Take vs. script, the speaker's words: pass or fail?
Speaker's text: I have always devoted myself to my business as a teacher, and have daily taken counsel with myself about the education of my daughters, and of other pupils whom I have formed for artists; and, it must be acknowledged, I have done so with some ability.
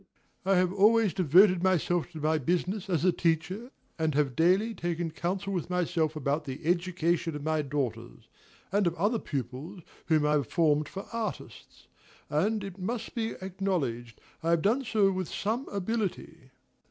pass